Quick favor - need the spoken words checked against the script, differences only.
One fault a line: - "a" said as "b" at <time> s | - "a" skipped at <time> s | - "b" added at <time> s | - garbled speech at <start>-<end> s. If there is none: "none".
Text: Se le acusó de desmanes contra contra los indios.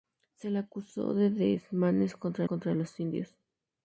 none